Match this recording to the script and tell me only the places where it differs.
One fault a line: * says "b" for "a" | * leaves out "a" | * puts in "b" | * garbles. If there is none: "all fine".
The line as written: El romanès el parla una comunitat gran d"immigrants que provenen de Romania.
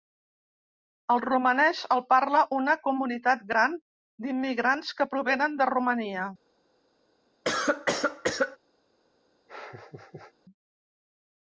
all fine